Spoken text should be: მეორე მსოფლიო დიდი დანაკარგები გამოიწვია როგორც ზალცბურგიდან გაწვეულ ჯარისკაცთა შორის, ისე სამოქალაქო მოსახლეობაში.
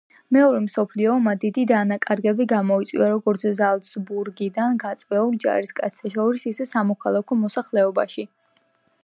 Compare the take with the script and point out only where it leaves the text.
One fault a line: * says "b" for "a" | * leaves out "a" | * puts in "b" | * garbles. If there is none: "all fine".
* puts in "ომმა"